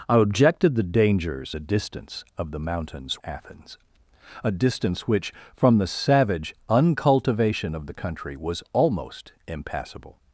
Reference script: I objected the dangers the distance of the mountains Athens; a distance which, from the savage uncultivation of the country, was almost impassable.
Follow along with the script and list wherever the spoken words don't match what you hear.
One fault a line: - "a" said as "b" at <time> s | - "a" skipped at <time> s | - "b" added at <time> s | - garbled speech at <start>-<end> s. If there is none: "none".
none